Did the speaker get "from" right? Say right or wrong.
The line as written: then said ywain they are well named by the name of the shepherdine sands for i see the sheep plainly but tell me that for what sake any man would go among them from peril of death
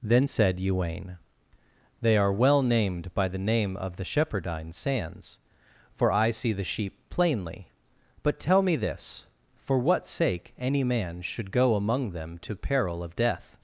wrong